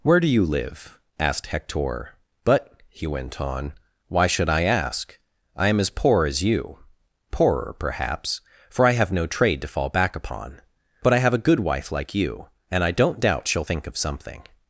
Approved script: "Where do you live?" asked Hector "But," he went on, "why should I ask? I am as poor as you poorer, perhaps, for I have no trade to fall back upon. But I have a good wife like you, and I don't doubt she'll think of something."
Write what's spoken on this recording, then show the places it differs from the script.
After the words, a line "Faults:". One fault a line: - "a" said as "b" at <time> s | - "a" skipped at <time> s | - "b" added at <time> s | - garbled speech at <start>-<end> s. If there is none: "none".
"Where do you live?" asked Hector "But," he went on, "why should I ask? I am as poor as you poorer, perhaps, for I have no trade to fall back upon. But I have a good wife like you, and I don't doubt she'll think of something."
Faults:
none